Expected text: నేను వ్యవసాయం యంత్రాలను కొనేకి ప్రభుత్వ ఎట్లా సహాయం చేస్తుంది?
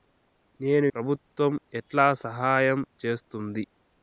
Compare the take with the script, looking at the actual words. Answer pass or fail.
fail